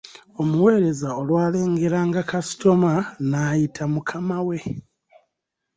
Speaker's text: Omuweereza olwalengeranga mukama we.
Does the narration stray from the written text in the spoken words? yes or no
yes